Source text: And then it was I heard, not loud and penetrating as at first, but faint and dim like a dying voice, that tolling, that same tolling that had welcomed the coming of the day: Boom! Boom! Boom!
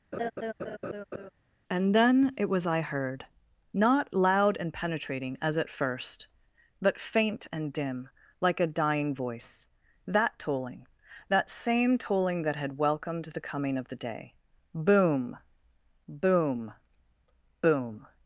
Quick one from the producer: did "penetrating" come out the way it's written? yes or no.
yes